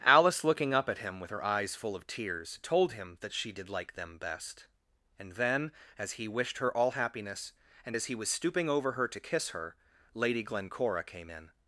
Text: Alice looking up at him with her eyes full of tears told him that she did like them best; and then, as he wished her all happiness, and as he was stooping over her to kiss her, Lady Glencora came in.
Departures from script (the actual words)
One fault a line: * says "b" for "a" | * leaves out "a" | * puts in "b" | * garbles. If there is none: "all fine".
all fine